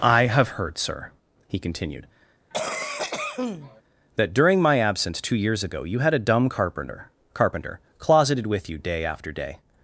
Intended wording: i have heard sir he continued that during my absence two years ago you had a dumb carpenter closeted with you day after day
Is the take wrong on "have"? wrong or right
right